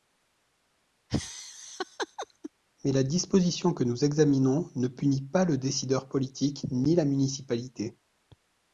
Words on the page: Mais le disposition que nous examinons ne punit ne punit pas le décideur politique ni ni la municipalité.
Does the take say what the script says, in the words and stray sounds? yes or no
no